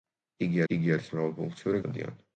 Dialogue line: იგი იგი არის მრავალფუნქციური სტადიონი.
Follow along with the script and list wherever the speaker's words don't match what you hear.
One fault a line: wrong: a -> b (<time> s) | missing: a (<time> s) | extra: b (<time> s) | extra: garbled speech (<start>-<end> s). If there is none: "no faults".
no faults